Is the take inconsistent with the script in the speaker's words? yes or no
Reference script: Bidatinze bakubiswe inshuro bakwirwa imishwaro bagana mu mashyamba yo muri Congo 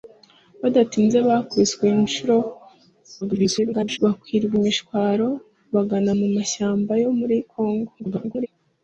yes